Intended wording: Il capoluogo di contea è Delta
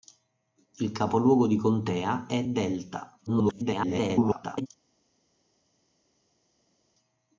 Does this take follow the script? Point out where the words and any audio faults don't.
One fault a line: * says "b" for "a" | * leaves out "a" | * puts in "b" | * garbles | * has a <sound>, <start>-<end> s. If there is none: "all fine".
* garbles